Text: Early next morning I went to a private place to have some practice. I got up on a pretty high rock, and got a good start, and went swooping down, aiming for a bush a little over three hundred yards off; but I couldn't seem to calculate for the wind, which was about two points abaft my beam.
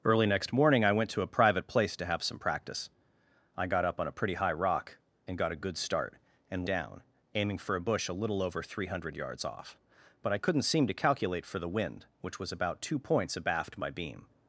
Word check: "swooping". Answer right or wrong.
wrong